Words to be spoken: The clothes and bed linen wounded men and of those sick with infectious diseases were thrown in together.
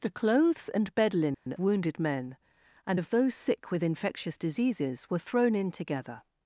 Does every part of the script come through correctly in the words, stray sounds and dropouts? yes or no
no